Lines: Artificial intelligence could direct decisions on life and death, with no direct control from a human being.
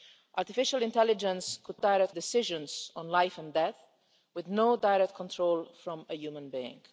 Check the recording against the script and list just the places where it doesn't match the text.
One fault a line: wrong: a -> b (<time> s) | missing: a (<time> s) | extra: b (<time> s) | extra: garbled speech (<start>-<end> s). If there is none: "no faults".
no faults